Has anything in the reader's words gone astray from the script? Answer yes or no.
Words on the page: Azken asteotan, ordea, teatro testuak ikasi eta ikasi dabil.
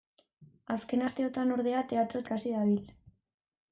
yes